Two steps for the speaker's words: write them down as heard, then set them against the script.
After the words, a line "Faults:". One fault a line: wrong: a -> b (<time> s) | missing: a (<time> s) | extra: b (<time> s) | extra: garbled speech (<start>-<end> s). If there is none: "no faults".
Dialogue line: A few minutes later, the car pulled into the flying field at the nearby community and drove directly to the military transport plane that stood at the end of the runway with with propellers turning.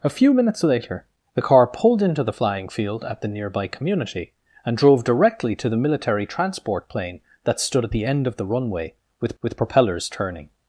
A few minutes later, the car pulled into the flying field at the nearby community and drove directly to the military transport plane that stood at the end of the runway with with propellers turning.
Faults:
no faults